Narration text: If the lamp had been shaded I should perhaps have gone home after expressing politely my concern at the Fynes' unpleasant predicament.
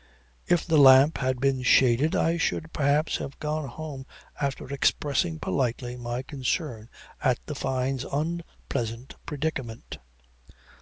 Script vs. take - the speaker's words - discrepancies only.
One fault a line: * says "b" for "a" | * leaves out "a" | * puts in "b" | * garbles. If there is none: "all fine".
all fine